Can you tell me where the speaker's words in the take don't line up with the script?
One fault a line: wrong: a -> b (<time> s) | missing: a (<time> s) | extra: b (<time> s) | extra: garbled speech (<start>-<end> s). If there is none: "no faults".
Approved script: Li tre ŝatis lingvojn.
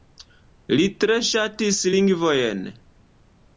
no faults